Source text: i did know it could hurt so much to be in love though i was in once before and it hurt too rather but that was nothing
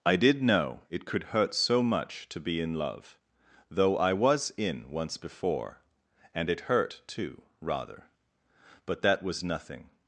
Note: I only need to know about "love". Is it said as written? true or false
true